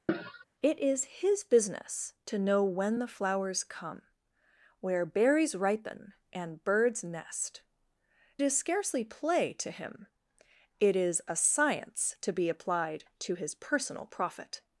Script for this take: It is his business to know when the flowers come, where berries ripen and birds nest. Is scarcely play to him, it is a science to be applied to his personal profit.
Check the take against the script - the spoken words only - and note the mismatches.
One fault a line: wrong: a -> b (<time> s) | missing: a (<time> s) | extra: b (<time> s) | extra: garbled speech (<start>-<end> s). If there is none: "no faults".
no faults